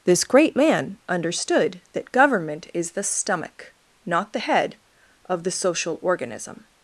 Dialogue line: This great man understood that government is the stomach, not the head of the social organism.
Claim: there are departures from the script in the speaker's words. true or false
false